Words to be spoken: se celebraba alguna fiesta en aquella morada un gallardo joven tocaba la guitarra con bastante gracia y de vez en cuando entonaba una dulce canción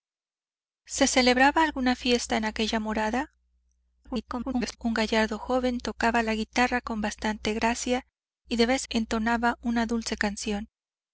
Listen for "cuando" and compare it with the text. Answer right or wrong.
wrong